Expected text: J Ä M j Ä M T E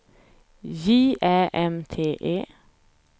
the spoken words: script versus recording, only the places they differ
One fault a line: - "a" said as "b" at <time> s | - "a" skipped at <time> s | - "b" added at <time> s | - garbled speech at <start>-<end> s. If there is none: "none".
- "j Ä M" skipped at 1.7 s